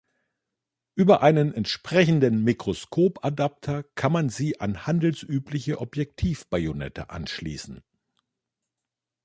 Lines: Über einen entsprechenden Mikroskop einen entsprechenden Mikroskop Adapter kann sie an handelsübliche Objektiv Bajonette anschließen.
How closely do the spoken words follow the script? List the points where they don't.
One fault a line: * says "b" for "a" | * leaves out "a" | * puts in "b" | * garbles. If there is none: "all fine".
* leaves out "einen entsprechenden Mikroskop"
* puts in "man"